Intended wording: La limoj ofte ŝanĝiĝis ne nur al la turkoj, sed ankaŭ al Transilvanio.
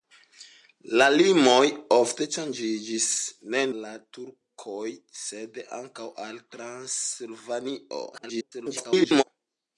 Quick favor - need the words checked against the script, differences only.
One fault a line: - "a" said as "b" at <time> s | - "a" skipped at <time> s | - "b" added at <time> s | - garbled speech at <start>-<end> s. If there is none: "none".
- "nur" skipped at 3.6 s
- garbled speech at 8.1-9.2 s